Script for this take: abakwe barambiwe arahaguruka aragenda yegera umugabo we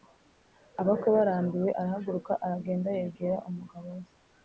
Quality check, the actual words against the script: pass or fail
pass